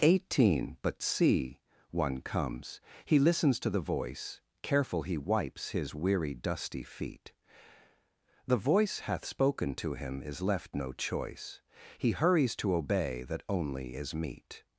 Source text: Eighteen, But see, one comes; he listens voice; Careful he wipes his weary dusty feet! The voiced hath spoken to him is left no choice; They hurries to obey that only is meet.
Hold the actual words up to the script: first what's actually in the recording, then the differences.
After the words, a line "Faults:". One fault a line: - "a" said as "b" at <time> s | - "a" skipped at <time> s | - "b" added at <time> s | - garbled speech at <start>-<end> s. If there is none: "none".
Eighteen, But see, one comes; he listens to the voice; Careful he wipes his weary dusty feet! The voice hath spoken to him is left no choice; He hurries to obey that only is meet.
Faults:
- "to the" added at 3.6 s
- "voiced" said as "voice" at 8.6 s
- "They" said as "He" at 12.0 s